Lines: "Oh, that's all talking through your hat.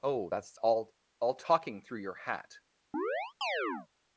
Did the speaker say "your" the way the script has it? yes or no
yes